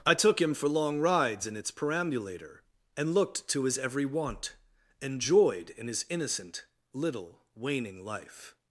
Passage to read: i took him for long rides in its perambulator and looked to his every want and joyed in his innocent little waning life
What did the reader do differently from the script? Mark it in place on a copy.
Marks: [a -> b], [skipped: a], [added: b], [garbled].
i took him for long rides in its perambulator and looked to his every want and joyed in his innocent little waning life